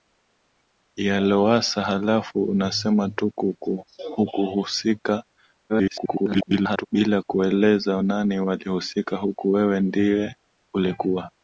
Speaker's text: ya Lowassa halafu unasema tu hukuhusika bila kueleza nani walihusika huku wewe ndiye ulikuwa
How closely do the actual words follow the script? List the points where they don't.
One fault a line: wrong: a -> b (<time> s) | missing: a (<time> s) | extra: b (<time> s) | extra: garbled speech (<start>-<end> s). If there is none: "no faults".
extra: garbled speech (5.7-6.9 s)